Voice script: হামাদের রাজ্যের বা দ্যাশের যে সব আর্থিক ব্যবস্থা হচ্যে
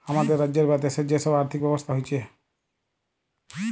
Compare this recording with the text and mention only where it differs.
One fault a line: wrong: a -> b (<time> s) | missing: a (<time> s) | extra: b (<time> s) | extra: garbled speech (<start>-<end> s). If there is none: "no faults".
no faults